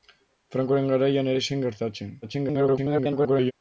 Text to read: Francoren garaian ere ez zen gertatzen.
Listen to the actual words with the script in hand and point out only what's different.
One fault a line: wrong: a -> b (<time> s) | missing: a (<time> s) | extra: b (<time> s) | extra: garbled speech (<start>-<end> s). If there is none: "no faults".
missing: ere (1.3 s)
extra: garbled speech (2.2-3.5 s)